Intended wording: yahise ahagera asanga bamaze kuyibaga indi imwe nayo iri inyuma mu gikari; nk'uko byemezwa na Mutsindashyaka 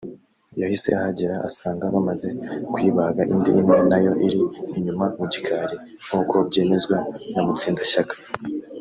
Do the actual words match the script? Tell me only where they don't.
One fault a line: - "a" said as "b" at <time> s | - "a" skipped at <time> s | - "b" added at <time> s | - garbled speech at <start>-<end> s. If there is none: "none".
none